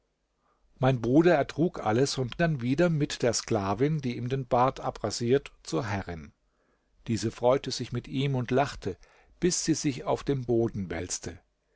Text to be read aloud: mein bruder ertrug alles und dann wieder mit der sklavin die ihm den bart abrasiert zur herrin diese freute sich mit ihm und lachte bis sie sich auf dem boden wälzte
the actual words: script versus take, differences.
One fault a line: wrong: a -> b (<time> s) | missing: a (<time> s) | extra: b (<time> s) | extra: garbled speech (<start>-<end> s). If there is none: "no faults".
no faults